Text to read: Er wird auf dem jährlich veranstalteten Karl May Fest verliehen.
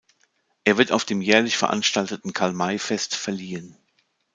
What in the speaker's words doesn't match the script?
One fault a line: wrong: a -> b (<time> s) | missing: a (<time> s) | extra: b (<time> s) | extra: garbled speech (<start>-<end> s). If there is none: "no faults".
no faults